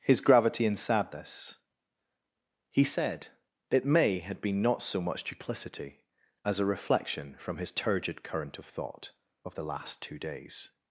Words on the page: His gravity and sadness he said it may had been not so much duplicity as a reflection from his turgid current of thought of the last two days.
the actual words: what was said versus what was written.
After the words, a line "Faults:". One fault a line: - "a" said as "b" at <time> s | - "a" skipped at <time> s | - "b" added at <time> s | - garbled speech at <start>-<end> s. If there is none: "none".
His gravity and sadness he said it may had been not so much duplicity as a reflection from his turgid current of thought of the last two days.
Faults:
none